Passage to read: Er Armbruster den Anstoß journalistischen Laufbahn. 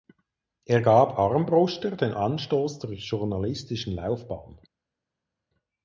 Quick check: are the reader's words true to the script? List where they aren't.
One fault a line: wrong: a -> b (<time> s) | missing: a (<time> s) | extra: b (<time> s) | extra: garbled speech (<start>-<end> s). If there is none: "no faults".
extra: gab (0.8 s)
extra: zur (2.8 s)